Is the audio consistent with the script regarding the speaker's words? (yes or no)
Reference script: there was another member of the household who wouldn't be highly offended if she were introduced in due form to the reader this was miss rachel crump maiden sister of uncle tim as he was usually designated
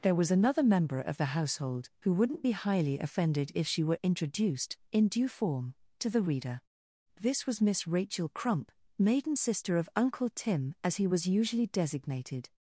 yes